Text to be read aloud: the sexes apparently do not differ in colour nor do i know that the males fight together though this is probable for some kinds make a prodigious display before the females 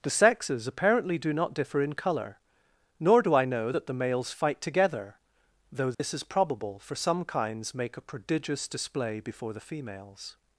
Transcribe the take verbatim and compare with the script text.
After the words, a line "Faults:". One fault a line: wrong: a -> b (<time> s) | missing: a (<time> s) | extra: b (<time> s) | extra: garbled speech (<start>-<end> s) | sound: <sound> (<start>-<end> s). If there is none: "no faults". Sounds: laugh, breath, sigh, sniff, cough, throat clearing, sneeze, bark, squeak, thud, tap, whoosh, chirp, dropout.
the sexes apparently do not differ in colour nor do i know that the males fight together though this is probable for some kinds make a prodigious display before the females
Faults:
sound: dropout (5.9-6.0 s)